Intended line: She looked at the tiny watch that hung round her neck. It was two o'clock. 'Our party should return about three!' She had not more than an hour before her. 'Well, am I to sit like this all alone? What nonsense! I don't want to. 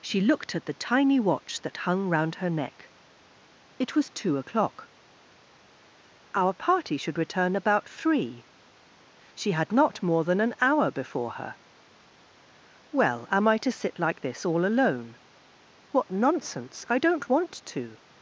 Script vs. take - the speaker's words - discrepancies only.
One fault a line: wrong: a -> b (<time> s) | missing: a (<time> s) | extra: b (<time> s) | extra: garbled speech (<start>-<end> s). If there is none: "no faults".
no faults